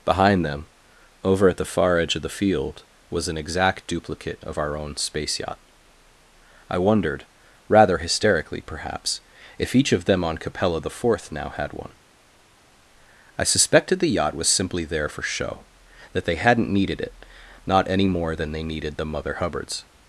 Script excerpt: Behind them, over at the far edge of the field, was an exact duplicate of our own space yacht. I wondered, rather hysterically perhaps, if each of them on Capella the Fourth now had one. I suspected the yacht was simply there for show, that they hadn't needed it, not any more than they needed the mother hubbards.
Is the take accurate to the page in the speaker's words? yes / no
yes